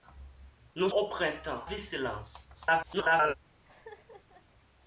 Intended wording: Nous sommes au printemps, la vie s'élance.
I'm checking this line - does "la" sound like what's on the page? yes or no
no